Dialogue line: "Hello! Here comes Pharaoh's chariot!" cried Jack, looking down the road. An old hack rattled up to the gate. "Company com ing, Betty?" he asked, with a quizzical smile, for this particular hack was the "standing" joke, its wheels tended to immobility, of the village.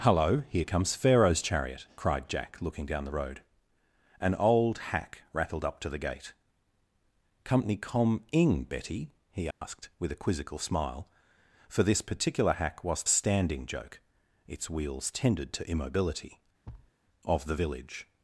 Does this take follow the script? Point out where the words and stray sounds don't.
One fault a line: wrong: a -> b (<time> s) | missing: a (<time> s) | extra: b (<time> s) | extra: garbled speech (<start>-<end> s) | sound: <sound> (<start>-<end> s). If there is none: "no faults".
sound: dropout (9.5-9.6 s)
missing: the (13.0 s)
sound: thud (16.6-16.9 s)